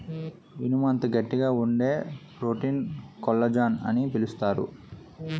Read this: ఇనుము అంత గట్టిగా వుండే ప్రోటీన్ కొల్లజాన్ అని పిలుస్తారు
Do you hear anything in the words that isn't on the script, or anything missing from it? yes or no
no